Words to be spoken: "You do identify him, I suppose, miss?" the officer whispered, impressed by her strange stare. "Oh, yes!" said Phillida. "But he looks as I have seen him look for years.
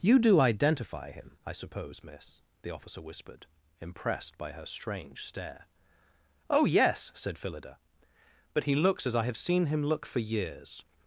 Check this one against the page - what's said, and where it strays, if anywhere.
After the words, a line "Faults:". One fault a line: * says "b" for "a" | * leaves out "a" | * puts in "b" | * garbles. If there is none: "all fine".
"You do identify him, I suppose, miss?" the officer whispered, impressed by her strange stare. "Oh, yes!" said Phillida. "But he looks as I have seen him look for years.
Faults:
all fine